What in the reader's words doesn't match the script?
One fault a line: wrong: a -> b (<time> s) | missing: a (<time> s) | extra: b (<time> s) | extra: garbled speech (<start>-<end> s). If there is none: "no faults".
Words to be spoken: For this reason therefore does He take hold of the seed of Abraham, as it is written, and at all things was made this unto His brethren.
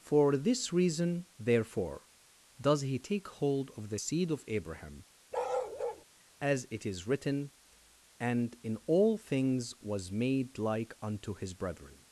wrong: at -> in (8.6 s)
wrong: this -> like (10.6 s)